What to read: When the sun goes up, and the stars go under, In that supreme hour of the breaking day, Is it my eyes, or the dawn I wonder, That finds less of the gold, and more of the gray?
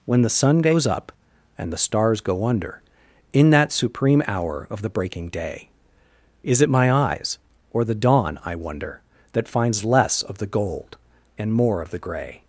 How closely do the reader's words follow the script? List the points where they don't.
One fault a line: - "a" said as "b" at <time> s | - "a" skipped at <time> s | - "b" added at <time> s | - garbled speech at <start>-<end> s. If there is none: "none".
none